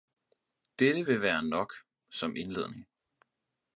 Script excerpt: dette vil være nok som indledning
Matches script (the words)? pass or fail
pass